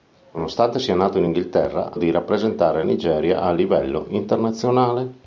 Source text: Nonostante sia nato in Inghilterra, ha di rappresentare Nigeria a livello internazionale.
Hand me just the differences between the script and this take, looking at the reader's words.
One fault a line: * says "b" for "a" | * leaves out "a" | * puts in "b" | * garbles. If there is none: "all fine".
all fine